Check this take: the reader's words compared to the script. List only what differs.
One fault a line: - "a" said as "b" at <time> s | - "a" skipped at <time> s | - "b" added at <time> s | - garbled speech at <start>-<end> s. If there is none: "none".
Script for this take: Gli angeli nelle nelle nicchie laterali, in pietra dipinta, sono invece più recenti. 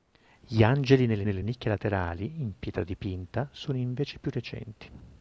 none